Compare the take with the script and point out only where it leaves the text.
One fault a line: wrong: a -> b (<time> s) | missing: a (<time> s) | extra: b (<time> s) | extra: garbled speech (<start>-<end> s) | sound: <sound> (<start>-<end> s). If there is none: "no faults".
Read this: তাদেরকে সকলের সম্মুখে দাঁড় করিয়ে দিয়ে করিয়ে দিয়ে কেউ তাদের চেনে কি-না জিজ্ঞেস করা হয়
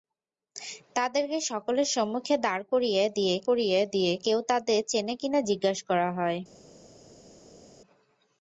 no faults